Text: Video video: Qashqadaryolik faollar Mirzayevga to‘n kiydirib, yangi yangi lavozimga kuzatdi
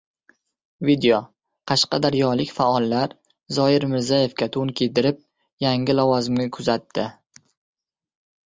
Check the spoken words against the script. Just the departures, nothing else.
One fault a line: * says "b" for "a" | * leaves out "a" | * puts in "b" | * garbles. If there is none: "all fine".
* leaves out "video"
* puts in "Zoir"
* leaves out "yangi"